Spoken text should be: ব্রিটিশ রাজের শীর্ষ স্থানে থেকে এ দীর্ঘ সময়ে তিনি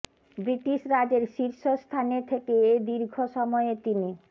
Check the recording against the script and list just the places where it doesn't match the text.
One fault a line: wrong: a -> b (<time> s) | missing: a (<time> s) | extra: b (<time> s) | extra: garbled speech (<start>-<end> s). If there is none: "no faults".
no faults